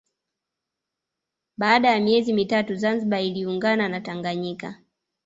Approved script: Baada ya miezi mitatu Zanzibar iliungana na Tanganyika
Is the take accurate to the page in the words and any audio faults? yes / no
yes